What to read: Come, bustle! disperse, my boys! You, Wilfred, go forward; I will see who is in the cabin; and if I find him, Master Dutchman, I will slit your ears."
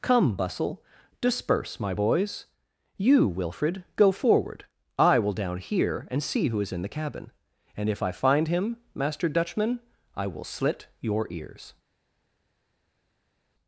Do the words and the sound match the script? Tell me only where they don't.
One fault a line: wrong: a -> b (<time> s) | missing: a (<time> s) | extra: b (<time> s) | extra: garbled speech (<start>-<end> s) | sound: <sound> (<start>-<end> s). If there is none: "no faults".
extra: down here and (5.3 s)